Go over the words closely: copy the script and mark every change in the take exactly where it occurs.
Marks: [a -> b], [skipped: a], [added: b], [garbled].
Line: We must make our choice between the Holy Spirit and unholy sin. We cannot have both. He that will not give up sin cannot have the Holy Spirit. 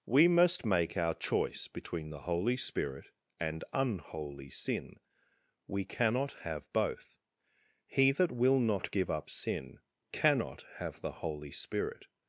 We must make our choice between the Holy Spirit and unholy sin. We cannot have both. He that will not give up sin cannot have the Holy Spirit.